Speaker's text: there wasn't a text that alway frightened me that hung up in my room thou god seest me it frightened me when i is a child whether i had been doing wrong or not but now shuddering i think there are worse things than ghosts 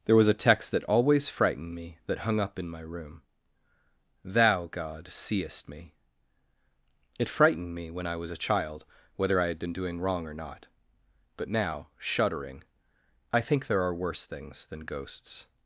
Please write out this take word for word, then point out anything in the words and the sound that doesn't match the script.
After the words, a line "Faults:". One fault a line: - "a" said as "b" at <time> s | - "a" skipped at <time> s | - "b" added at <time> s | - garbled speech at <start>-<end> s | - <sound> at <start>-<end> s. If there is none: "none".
there was a text that always frightened me that hung up in my room thou god seest me it frightened me when i was a child whether i had been doing wrong or not but now shuddering i think there are worse things than ghosts
Faults:
- "wasn't" said as "was" at 0.1 s
- "alway" said as "always" at 0.8 s
- "is" said as "was" at 8.2 s